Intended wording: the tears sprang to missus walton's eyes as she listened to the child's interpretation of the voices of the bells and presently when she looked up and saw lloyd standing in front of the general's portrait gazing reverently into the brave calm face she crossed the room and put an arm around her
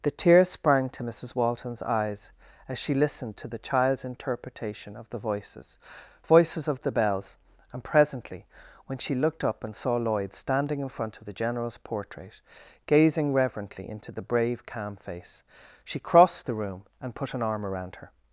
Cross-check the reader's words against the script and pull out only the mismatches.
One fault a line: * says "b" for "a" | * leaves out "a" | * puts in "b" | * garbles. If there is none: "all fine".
* puts in "voices"